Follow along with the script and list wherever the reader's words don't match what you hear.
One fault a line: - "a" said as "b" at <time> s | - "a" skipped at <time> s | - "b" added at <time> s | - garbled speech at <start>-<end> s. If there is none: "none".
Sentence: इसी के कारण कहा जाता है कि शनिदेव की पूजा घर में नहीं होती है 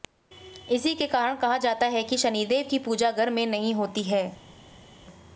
none